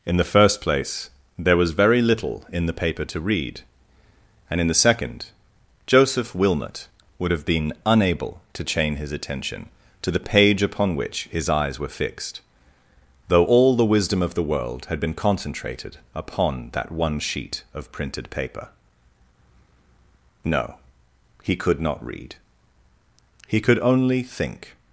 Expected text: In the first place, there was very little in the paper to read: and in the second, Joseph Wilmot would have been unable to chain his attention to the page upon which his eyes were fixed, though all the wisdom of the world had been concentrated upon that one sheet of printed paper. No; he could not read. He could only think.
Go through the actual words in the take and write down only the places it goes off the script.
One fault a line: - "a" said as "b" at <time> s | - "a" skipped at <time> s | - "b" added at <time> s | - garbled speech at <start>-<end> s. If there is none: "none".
none